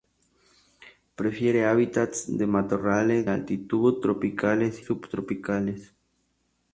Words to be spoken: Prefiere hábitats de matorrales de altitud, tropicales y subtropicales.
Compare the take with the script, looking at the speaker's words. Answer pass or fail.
fail